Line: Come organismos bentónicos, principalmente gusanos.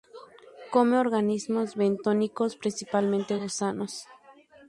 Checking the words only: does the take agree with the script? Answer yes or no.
yes